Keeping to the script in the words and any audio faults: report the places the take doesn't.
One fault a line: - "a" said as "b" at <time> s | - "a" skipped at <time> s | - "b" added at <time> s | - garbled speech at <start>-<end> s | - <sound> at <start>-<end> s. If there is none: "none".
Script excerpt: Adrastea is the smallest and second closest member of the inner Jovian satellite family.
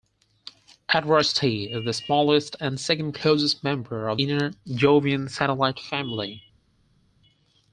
- "the" skipped at 4.2 s